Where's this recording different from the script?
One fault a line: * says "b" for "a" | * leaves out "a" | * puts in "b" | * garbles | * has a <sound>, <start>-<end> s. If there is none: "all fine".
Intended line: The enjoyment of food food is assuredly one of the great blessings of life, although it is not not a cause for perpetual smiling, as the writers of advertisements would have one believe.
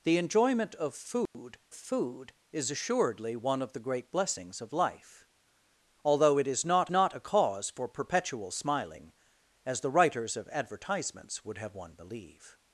* has a dropout, 1.3-1.3 s